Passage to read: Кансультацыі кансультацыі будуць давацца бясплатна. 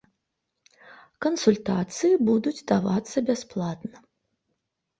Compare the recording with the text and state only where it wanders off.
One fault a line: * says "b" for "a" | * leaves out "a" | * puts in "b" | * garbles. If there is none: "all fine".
* leaves out "кансультацыі"